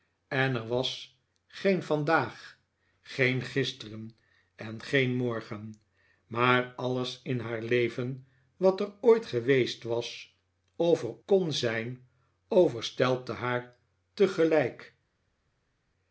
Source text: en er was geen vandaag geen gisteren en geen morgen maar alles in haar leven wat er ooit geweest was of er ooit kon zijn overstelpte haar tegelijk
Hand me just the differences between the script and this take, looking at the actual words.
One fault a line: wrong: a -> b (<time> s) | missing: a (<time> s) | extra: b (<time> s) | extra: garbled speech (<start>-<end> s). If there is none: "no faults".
missing: ooit (11.2 s)